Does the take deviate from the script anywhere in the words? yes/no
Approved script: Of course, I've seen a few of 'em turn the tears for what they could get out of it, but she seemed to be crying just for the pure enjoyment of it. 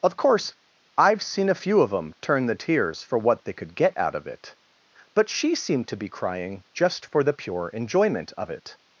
no